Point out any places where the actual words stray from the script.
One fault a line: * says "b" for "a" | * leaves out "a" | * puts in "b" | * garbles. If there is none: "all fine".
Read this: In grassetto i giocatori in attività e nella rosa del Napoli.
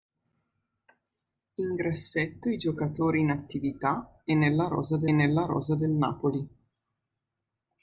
* puts in "nella rosa del"